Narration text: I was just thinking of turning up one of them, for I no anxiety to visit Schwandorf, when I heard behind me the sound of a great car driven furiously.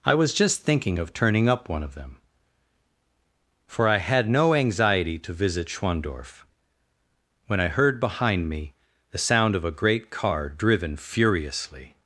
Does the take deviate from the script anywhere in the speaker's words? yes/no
yes